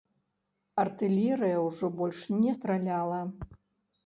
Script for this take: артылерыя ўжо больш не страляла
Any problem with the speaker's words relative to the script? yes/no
no